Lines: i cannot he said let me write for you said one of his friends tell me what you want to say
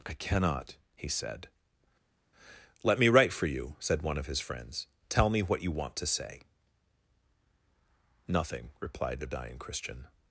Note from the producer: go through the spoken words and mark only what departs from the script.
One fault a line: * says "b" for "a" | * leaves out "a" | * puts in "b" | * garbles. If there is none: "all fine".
* puts in "nothing replied the dying christian"